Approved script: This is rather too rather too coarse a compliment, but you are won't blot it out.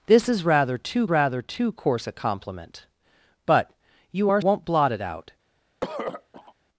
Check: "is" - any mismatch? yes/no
no